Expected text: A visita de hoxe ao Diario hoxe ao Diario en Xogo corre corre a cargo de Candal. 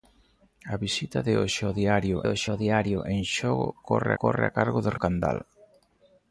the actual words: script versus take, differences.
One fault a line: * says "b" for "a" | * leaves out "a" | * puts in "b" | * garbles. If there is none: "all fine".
all fine